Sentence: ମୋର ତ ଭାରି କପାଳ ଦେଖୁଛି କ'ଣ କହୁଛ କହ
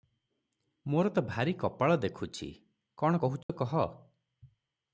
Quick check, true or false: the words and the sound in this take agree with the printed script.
false